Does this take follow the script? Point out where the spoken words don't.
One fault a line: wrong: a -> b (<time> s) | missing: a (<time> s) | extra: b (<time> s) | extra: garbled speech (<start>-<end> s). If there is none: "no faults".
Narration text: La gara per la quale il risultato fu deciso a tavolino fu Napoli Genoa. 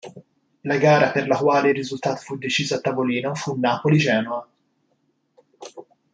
no faults